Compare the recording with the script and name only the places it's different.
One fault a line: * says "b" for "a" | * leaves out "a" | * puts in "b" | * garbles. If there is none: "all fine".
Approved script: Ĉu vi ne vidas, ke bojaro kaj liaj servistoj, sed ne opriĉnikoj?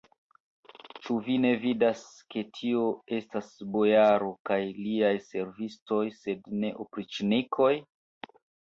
* puts in "tio estas"